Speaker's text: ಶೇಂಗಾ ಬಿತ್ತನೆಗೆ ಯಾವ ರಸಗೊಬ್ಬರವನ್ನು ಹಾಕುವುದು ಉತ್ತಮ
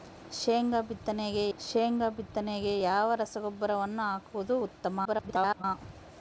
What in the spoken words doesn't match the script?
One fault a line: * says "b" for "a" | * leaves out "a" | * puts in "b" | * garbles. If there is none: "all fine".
* puts in "ಶೇಂಗಾ ಬಿತ್ತನೆಗೆ"
* garbles